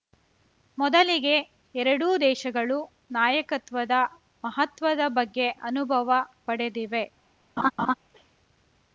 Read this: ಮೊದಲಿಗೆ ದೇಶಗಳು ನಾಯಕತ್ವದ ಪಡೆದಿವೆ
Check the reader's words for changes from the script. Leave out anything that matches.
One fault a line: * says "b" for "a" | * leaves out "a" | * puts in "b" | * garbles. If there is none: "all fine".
* puts in "ಎರಡೂ"
* puts in "ಮಹತ್ವದ ಬಗ್ಗೆ ಅನುಭವ"